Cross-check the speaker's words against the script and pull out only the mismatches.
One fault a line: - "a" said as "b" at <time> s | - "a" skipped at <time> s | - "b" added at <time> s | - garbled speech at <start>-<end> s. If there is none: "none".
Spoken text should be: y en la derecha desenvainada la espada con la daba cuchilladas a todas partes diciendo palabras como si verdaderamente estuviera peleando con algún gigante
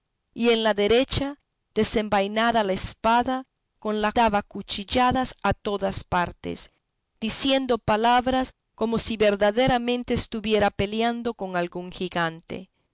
none